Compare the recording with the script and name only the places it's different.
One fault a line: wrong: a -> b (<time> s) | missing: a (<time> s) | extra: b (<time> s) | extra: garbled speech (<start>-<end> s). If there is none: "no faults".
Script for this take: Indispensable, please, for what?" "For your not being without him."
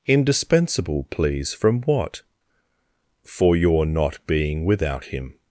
wrong: for -> from (1.5 s)